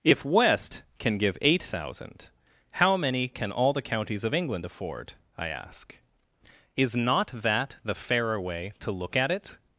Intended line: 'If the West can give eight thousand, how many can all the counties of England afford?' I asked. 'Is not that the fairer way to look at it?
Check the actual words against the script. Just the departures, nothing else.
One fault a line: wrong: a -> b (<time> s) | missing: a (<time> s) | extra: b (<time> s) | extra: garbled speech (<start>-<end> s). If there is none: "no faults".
missing: the (0.2 s)
wrong: asked -> ask (5.5 s)